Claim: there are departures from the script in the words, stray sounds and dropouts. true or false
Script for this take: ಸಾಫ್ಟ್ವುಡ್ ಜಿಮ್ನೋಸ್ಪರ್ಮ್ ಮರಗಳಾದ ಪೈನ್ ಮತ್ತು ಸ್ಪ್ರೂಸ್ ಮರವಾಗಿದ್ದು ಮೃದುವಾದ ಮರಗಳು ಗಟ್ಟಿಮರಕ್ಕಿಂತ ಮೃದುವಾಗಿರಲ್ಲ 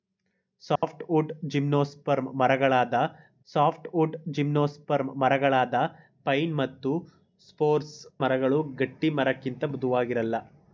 true